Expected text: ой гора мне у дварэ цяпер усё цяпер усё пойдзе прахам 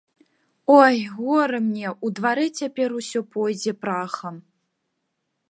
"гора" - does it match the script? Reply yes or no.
yes